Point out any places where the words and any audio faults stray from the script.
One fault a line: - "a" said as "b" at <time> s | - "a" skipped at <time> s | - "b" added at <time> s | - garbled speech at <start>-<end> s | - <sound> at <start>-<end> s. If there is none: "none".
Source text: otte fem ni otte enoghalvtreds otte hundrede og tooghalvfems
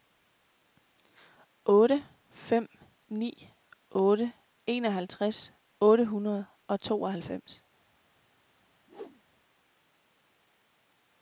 - whoosh at 8.9-9.2 s